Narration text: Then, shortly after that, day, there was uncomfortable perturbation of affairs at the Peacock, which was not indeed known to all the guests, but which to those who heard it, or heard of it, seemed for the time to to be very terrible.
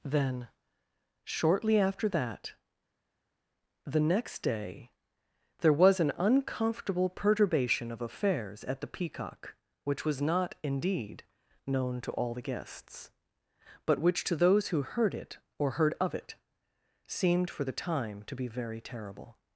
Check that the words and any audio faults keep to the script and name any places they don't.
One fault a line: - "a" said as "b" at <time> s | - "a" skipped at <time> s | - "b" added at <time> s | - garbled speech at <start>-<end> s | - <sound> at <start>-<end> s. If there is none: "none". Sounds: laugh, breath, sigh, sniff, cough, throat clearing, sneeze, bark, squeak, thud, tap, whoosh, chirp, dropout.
- "the next" added at 3.8 s
- "an" added at 6.0 s
- "to" skipped at 18.4 s